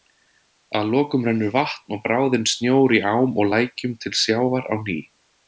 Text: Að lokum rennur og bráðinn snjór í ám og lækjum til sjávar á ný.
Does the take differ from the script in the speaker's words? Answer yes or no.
yes